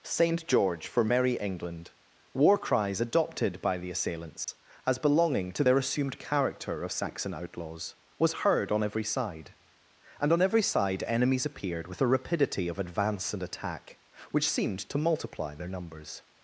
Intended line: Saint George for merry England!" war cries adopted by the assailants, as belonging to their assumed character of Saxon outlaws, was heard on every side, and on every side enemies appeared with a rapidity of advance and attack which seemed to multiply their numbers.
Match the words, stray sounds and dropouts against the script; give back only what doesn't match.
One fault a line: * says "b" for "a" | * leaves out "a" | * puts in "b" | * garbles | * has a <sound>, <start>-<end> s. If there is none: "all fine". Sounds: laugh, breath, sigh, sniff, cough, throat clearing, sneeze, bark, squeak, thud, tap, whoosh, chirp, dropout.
* has a dropout, 4.4-4.5 s